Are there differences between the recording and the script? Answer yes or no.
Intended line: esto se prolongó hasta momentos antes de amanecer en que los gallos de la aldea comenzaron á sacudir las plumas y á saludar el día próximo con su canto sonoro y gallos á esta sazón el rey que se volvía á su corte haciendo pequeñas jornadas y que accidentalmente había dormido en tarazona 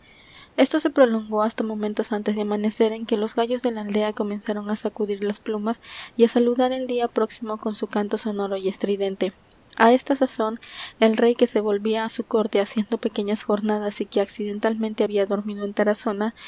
yes